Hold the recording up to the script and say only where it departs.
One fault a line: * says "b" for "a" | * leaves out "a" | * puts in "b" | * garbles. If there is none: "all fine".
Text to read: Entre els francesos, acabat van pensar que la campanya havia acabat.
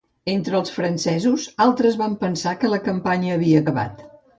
* says "altres" for "acabat"